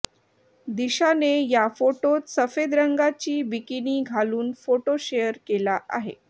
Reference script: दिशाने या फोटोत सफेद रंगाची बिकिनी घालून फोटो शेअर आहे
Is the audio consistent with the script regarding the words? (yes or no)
no